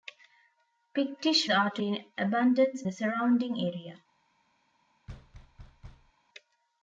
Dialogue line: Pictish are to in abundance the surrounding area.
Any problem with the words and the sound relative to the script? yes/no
yes